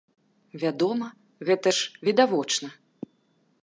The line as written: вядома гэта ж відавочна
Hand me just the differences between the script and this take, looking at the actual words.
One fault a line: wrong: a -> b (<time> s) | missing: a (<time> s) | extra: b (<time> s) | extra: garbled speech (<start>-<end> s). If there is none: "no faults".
no faults